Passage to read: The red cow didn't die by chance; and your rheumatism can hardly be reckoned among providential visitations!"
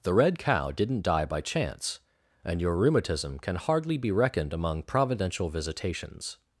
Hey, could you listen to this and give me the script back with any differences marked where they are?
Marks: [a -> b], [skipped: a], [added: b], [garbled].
The red cow didn't die by chance; and your rheumatism can hardly be reckoned among providential visitations!"